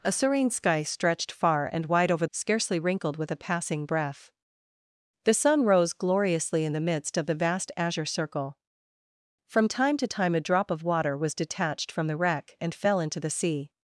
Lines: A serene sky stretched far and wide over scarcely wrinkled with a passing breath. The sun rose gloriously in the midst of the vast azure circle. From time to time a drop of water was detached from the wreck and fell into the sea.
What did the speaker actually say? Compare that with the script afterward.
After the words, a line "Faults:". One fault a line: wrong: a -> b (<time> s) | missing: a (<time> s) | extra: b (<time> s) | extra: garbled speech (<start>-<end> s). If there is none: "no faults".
A serene sky stretched far and wide over scarcely wrinkled with a passing breath. The sun rose gloriously in the midst of the vast azure circle. From time to time a drop of water was detached from the wreck and fell into the sea.
Faults:
no faults